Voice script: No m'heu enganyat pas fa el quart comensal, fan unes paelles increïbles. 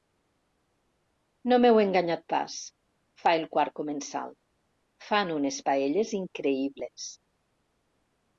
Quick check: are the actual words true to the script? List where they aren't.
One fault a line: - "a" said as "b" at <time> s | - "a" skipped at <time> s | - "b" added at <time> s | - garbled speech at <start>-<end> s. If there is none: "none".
none